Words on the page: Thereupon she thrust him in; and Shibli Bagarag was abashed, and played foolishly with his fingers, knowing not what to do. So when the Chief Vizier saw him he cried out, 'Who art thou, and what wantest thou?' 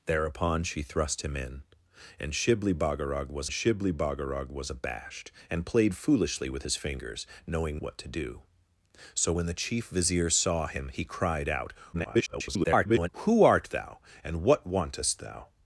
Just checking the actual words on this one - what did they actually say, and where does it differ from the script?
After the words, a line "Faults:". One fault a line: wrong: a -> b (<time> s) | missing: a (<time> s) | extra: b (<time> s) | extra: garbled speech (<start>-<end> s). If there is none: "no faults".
Thereupon she thrust him in; and Shibli Bagarag was Shibli Bagarag was abashed, and played foolishly with his fingers, knowing what to do. So when the Chief Vizier saw him he cried out, [garbled] 'Who art thou, and what wantest thou?'
Faults:
extra: Shibli Bagarag was (3.5 s)
missing: not (7.8 s)
extra: garbled speech (11.9-13.1 s)